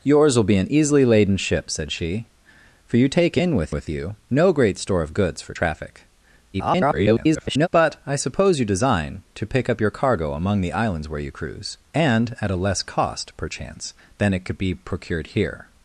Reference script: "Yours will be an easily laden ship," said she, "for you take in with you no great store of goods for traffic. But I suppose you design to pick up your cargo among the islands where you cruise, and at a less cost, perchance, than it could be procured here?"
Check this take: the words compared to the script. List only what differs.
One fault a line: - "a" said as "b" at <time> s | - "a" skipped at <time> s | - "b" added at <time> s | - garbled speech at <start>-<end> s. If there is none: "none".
- "with" added at 3.7 s
- garbled speech at 6.5-7.7 s